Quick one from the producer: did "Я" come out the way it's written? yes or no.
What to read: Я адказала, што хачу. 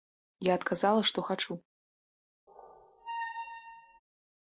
yes